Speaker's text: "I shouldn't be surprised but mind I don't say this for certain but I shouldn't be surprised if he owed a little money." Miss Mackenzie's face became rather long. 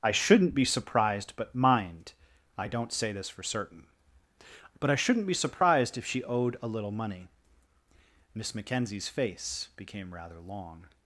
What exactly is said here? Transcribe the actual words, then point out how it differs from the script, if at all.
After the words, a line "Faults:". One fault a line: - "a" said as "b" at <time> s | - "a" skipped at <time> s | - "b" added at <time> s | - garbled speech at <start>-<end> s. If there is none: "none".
"I shouldn't be surprised but mind I don't say this for certain but I shouldn't be surprised if she owed a little money." Miss Mackenzie's face became rather long.
Faults:
- "he" said as "she" at 6.0 s